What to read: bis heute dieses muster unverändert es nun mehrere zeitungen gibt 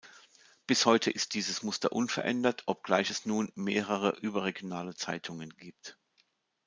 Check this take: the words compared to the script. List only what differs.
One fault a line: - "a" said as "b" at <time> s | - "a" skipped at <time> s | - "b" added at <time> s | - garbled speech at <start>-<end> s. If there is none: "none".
- "ist" added at 1.1 s
- "obgleich" added at 2.6 s
- "überregionale" added at 4.2 s